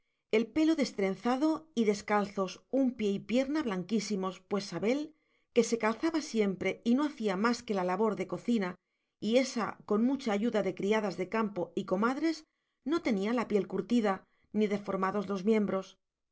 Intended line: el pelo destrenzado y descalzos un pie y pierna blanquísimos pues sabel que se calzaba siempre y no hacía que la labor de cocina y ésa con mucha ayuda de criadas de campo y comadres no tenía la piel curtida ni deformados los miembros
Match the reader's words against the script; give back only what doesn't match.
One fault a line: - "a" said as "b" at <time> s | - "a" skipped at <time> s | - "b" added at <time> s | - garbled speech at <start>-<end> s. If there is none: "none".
- "más" added at 7.4 s